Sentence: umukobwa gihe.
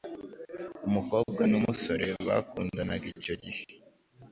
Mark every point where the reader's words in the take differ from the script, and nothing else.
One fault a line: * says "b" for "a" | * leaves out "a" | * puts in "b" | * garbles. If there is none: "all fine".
* puts in "n'umusore bakundanaga icyo"